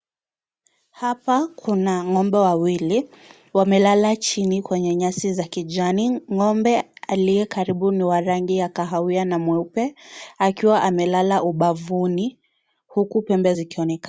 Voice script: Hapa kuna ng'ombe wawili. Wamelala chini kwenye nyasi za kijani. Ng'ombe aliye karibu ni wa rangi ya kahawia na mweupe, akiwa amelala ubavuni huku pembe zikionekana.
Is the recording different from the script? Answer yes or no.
no